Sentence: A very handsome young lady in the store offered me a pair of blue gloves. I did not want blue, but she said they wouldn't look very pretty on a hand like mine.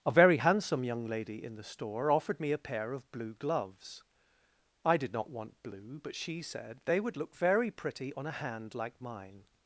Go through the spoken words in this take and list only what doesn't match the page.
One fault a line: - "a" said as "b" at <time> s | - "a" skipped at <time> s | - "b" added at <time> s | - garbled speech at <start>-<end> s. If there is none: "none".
- "wouldn't" said as "would" at 7.0 s